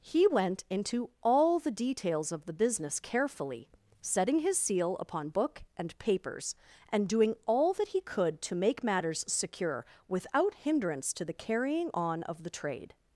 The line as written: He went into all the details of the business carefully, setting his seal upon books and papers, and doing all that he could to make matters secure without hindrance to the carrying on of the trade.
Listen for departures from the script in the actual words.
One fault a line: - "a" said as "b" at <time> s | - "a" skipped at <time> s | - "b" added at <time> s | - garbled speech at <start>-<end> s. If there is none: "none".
- "books" said as "book" at 5.3 s